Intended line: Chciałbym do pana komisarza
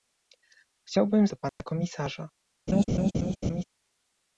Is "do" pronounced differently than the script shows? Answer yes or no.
no